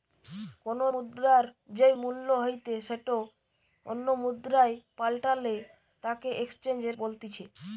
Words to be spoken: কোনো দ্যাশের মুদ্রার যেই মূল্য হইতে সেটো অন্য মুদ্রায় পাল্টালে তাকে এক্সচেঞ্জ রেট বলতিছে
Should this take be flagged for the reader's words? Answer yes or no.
yes